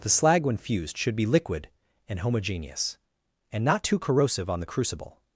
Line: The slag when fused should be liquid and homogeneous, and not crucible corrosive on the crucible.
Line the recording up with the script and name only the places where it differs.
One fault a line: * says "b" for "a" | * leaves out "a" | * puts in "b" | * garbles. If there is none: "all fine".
* says "too" for "crucible"